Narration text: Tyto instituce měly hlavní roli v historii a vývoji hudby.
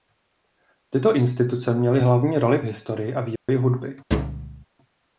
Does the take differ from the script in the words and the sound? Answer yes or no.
yes